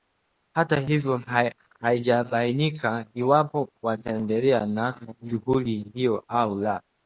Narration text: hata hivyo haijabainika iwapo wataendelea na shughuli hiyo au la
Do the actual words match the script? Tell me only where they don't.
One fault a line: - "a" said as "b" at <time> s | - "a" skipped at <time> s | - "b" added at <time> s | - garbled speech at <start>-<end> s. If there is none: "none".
none